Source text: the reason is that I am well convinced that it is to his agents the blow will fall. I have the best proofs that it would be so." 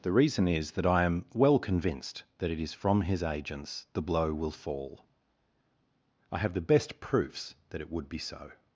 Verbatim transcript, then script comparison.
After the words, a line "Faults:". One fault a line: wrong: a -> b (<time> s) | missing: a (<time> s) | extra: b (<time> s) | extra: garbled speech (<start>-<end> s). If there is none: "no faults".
the reason is that I am well convinced that it is from his agents the blow will fall. I have the best proofs that it would be so."
Faults:
wrong: to -> from (2.7 s)